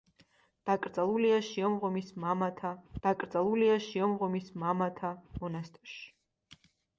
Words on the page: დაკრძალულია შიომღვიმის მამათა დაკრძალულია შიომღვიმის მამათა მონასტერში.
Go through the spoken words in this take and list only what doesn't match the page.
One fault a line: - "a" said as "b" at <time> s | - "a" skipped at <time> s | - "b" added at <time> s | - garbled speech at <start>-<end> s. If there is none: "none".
none